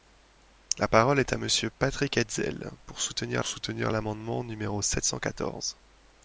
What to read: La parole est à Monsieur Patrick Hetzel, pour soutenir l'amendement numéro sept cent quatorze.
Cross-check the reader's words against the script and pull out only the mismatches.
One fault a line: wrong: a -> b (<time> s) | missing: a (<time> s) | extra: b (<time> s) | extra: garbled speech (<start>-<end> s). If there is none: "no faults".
extra: soutenir (3.4 s)